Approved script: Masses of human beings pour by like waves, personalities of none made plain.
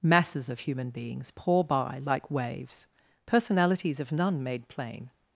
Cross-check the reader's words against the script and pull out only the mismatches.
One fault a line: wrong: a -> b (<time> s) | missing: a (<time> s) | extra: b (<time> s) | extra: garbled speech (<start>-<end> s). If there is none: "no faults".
no faults